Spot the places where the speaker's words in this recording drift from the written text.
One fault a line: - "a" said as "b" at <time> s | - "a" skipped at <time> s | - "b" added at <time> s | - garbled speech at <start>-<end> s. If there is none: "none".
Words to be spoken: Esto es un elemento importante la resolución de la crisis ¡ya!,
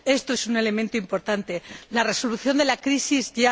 none